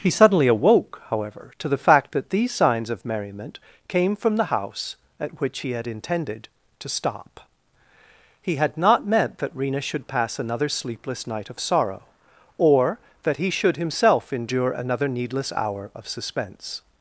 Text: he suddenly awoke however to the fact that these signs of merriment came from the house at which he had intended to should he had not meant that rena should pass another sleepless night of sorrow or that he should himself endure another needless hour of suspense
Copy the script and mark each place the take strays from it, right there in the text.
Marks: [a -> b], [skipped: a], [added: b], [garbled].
he suddenly awoke however to the fact that these signs of merriment came from the house at which he had intended to [should -> stop] he had not meant that rena should pass another sleepless night of sorrow or that he should himself endure another needless hour of suspense